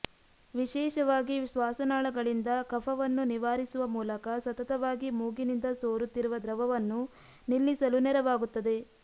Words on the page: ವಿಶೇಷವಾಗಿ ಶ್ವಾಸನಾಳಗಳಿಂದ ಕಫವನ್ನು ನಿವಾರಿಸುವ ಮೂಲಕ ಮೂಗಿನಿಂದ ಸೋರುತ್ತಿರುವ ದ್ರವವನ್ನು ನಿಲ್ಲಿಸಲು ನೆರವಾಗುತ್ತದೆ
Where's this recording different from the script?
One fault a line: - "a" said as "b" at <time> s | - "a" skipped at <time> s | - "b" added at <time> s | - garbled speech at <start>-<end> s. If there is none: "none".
- "ಸತತವಾಗಿ" added at 4.4 s